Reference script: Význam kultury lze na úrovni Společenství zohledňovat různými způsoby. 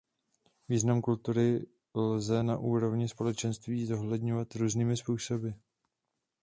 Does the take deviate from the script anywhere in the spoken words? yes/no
no